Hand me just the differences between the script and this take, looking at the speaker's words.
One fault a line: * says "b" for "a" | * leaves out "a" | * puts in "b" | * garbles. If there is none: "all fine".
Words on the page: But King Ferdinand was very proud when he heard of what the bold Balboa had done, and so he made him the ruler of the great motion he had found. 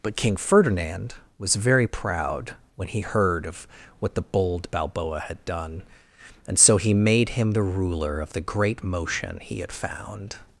all fine